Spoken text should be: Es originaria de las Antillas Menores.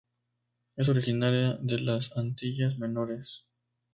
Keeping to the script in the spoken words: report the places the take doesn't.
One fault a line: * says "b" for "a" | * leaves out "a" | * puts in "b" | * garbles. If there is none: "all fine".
all fine